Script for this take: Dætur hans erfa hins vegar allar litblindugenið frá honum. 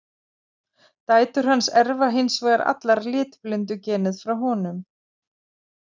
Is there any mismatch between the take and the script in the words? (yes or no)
no